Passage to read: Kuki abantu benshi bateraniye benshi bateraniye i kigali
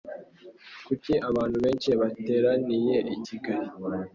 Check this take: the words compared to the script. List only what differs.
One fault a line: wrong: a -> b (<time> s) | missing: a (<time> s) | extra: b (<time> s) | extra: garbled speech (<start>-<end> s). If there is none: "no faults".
missing: benshi bateraniye (3.0 s)